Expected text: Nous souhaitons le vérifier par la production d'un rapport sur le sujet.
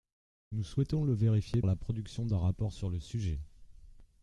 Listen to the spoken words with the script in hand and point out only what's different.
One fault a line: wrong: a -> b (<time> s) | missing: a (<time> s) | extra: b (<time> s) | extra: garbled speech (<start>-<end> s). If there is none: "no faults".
missing: par (1.6 s)